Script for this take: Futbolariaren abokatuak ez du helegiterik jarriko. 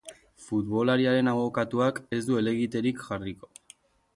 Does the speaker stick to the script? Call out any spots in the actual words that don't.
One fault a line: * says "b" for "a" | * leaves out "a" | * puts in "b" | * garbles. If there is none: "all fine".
all fine